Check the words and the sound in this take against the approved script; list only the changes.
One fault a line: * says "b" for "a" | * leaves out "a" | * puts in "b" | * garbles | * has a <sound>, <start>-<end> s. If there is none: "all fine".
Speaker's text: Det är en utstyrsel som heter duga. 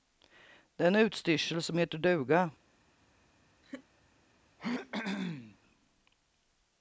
* has a laugh, 3.6-3.9 s
* has a throat clearing, 4.6-5.6 s